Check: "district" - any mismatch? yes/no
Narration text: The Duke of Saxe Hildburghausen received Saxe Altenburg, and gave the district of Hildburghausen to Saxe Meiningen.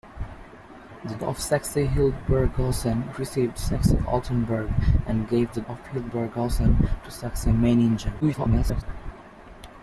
yes